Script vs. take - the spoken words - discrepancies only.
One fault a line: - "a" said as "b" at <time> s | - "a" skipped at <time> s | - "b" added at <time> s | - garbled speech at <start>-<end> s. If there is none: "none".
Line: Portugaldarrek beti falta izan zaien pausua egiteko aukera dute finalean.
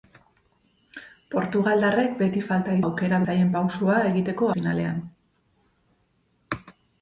- "izan" said as "aukera" at 2.8 s
- "aukera dute" skipped at 4.5 s